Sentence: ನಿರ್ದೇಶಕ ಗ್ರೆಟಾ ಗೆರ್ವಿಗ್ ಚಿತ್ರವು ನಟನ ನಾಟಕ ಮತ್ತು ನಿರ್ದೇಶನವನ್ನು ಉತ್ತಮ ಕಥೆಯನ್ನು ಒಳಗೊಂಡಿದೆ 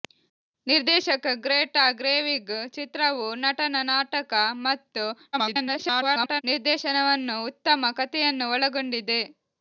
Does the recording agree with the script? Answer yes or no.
no